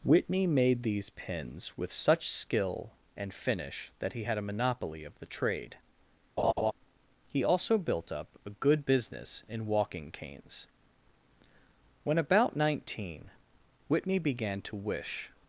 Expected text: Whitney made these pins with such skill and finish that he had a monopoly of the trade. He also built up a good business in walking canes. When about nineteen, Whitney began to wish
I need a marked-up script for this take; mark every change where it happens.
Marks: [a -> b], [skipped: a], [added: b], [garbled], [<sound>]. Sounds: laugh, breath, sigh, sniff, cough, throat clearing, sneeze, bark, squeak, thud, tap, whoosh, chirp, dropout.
Whitney made these pins with such skill and finish that he had a monopoly of the trade. [laugh] He also built up a good business in walking canes. When about nineteen, Whitney began to wish